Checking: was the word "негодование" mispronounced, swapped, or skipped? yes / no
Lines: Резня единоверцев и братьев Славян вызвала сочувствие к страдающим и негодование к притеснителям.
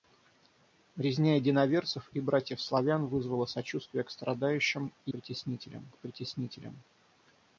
yes